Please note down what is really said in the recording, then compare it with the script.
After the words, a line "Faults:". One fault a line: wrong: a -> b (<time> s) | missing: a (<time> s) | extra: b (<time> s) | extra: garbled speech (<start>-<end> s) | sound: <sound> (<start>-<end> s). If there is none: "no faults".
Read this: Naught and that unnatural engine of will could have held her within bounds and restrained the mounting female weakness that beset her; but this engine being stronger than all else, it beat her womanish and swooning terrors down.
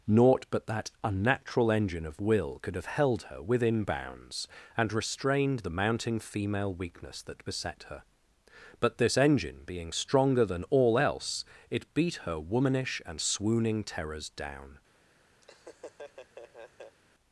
Naught but that unnatural engine of will could have held her within bounds and restrained the mounting female weakness that beset her; but this engine being stronger than all else, it beat her womanish and swooning terrors down.
Faults:
wrong: and -> but (0.5 s)
sound: laugh (15.4-17.0 s)